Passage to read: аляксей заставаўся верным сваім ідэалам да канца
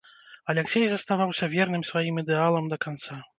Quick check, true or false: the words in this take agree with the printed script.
true